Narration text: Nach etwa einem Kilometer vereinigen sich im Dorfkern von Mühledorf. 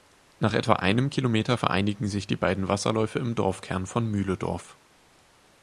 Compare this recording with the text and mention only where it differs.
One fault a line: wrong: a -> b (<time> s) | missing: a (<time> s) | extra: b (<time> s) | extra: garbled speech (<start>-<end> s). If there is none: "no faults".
extra: die beiden Wasserläufe (2.2 s)